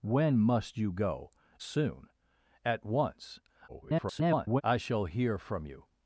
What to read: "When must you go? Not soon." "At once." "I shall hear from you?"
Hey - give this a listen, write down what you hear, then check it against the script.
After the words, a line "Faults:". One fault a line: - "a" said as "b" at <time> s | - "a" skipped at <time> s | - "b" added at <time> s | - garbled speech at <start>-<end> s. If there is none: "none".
"When must you go? Soon." "At once." [garbled] "I shall hear from you?"
Faults:
- "Not" skipped at 1.3 s
- garbled speech at 3.7-4.6 s